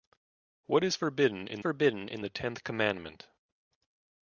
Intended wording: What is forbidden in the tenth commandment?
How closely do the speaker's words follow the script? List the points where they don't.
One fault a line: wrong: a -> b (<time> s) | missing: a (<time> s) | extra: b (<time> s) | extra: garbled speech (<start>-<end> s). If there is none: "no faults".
extra: forbidden in (1.6 s)